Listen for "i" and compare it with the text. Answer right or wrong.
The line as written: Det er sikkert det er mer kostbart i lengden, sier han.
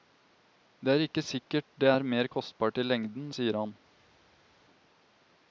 right